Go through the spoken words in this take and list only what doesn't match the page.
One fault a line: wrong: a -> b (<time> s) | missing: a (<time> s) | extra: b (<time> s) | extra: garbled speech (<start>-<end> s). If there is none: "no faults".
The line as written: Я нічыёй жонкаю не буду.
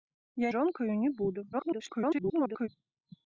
missing: нічыёй (0.5 s)
extra: garbled speech (1.5-2.7 s)